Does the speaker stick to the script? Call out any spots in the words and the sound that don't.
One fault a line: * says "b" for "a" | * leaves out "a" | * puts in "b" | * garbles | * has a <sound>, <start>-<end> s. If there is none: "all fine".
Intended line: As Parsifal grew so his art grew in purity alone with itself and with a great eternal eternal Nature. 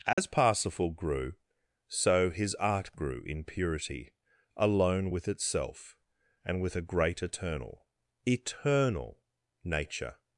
* has a dropout, 0.1-0.2 s